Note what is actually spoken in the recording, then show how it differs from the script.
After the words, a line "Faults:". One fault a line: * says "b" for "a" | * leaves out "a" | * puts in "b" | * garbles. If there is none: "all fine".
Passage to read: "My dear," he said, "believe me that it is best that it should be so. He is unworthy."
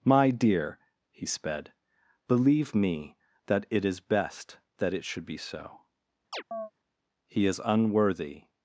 "My dear," he sped, "believe me that it is best that it should be so. He is unworthy."
Faults:
* says "sped" for "said"